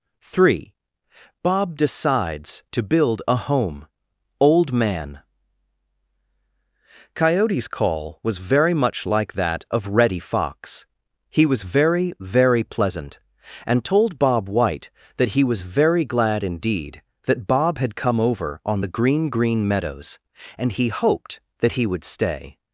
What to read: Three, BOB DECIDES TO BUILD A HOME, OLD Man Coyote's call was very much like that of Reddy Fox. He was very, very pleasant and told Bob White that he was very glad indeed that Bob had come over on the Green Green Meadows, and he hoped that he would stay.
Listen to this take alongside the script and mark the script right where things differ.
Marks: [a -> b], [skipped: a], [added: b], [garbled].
Three, BOB DECIDES TO BUILD A HOME, OLD Man Coyote's call was very much like that of Reddy Fox. He was very, very pleasant and told Bob White that he was very glad indeed that Bob had come over on the Green Green Meadows, and he hoped that he would stay.